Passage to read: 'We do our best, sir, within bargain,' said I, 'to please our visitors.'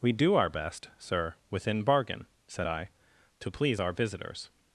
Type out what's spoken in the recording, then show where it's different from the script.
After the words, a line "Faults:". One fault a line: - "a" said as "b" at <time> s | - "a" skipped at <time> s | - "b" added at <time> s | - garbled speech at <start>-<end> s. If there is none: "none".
'We do our best, sir, within bargain,' said I, 'to please our visitors.'
Faults:
none